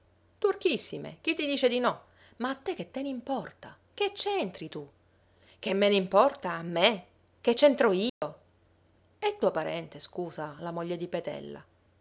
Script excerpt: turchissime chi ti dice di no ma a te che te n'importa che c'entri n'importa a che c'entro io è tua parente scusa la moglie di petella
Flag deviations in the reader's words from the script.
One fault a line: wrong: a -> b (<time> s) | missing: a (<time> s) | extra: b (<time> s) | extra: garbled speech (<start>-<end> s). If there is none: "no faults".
extra: tu che me (4.7 s)
extra: me (6.6 s)